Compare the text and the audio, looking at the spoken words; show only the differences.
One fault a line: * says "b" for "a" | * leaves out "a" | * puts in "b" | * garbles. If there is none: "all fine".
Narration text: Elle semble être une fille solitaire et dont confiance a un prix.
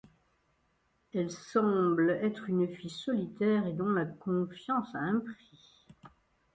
* puts in "la"